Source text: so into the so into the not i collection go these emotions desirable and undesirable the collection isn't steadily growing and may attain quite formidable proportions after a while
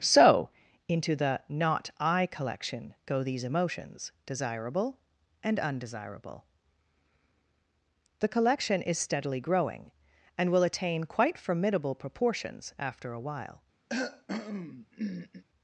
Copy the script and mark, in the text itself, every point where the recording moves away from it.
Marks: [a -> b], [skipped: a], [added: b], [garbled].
so into the [skipped: so into the] not i collection go these emotions desirable and undesirable the collection [isn't -> is] steadily growing and [may -> will] attain quite formidable proportions after a while